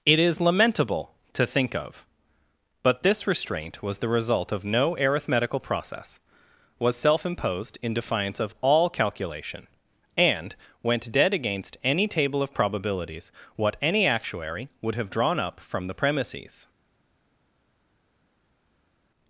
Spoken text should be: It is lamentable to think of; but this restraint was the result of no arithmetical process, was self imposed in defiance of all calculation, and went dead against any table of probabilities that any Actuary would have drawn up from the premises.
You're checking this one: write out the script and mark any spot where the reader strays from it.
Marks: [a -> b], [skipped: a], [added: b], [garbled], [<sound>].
It is lamentable to think of; but this restraint was the result of no arithmetical process, was self imposed in defiance of all calculation, and went dead against any table of probabilities [that -> what] any Actuary would have drawn up from the premises.